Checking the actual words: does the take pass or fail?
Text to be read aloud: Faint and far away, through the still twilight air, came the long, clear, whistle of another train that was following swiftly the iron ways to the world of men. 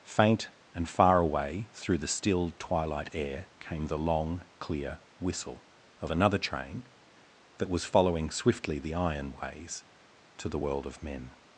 pass